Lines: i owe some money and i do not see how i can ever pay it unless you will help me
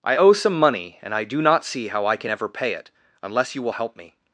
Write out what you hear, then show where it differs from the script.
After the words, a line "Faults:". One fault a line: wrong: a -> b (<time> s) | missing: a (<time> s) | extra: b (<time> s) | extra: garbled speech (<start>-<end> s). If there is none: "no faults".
i owe some money and i do not see how i can ever pay it unless you will help me
Faults:
no faults